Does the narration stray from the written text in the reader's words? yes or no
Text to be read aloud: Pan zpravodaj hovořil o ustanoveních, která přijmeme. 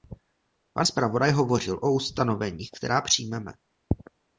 no